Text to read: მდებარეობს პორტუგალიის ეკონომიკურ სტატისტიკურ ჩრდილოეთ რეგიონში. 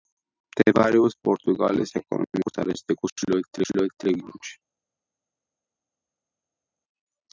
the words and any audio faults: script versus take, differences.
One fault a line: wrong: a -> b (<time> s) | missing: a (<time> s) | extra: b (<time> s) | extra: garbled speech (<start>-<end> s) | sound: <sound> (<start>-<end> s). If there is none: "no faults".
extra: ჩრდილოეთ (3.6 s)